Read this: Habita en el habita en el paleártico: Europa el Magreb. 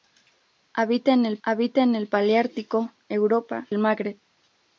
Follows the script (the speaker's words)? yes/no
yes